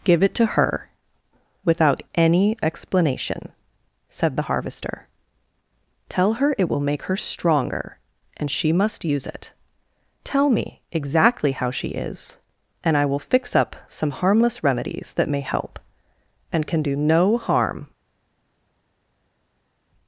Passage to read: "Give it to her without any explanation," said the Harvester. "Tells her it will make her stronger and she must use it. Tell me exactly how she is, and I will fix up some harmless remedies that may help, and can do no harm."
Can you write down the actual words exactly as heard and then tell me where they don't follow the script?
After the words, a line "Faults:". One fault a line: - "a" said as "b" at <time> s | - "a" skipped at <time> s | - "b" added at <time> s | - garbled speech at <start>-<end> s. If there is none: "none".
"Give it to her without any explanation," said the Harvester. "Tell her it will make her stronger and she must use it. Tell me exactly how she is, and I will fix up some harmless remedies that may help, and can do no harm."
Faults:
- "Tells" said as "Tell" at 6.1 s